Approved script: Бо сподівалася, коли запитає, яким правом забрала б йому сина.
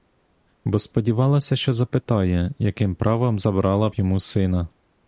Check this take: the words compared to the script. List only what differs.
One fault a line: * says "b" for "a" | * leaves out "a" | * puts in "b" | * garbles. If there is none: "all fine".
* says "що" for "коли"